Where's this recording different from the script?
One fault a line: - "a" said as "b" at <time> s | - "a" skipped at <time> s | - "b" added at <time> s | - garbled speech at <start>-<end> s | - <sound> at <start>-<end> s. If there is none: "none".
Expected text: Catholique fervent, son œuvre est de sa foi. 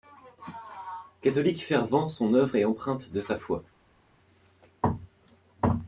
- "empreinte" added at 2.6 s